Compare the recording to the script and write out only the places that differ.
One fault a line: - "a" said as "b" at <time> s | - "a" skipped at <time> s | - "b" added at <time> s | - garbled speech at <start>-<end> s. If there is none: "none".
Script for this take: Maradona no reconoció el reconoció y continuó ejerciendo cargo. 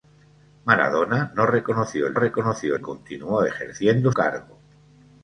none